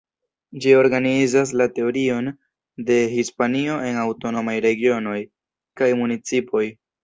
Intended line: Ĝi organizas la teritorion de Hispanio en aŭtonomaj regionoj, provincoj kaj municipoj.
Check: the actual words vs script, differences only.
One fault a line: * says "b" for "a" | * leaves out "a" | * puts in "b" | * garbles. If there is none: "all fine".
* leaves out "provincoj"